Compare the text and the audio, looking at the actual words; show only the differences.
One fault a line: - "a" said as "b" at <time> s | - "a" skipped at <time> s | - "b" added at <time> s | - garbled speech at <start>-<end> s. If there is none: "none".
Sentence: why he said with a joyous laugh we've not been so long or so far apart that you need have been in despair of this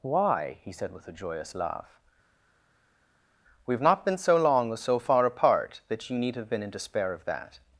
- "this" said as "that" at 7.2 s